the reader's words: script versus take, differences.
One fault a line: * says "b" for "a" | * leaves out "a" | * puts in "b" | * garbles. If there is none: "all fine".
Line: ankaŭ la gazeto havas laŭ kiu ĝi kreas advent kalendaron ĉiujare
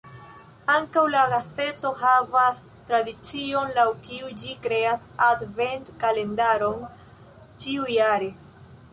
* puts in "tradicion"